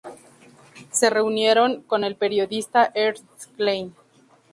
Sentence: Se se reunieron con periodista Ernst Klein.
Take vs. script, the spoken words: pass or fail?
fail